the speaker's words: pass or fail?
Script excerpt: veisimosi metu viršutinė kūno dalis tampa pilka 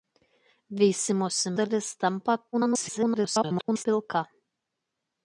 fail